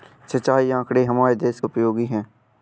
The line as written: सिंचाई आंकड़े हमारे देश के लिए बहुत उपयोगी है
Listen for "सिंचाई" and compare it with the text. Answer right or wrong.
right